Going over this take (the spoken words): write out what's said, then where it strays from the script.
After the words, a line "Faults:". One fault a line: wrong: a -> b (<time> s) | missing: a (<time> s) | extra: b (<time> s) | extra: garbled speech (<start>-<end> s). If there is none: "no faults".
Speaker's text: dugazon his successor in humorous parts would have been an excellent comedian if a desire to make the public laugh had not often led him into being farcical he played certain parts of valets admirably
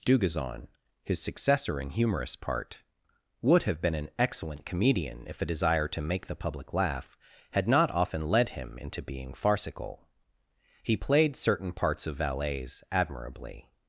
dugazon his successor in humorous part would have been an excellent comedian if a desire to make the public laugh had not often led him into being farcical he played certain parts of valets admirably
Faults:
wrong: parts -> part (2.4 s)